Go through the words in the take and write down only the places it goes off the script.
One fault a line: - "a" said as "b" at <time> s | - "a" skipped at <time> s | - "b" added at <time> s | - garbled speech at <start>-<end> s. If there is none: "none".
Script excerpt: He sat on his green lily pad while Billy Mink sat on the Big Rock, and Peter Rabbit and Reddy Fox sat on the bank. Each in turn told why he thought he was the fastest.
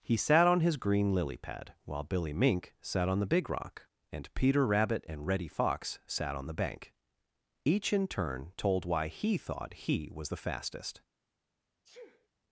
none